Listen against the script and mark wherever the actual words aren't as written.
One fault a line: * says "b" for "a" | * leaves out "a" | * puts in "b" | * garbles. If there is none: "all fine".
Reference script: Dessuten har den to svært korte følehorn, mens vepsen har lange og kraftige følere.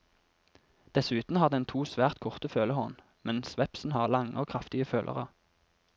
all fine